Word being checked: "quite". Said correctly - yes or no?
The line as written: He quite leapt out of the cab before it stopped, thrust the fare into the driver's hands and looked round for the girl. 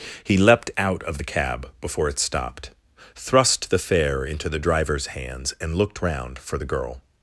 no